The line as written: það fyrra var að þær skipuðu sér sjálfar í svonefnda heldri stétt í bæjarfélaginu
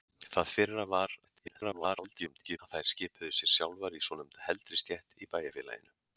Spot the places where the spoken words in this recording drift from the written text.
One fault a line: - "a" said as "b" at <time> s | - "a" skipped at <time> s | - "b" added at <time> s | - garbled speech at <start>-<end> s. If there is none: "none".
- garbled speech at 1.2-2.6 s